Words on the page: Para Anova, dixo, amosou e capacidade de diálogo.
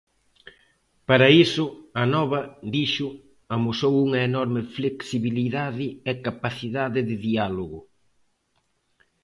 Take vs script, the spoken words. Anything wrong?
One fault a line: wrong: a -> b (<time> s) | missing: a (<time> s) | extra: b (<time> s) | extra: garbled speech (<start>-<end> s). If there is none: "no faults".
extra: iso (1.4 s)
extra: unha enorme flexibilidade (4.1 s)